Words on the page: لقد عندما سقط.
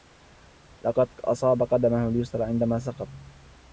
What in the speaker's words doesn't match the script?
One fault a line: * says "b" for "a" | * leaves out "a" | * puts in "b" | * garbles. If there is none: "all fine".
* puts in "أصاب قدمه اليسرى"